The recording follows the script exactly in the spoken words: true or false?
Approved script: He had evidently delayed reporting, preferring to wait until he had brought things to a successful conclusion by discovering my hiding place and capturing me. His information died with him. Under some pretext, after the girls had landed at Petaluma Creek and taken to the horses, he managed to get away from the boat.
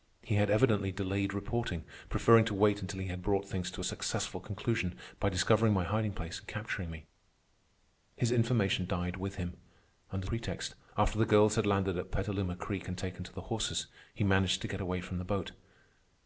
false